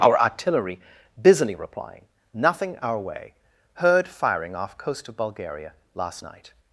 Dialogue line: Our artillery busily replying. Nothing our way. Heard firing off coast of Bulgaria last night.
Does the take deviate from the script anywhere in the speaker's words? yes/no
no